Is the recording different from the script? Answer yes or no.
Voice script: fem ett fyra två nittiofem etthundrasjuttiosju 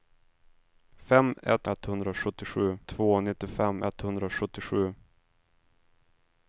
yes